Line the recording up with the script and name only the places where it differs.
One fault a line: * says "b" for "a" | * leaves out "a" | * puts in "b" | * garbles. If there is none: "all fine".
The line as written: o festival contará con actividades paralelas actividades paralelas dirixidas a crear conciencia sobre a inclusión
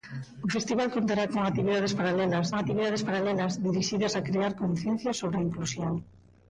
all fine